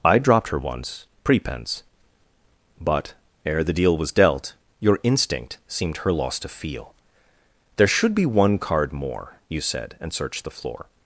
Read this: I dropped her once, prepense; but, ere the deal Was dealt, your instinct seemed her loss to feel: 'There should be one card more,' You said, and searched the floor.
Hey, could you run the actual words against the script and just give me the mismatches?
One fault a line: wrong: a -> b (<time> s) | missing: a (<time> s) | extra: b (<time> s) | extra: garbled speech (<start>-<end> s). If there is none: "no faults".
no faults